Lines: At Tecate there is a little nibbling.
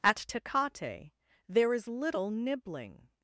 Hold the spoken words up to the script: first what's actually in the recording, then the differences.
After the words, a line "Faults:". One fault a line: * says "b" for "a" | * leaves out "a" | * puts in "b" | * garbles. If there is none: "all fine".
At Tecate there is little nibbling.
Faults:
* leaves out "a"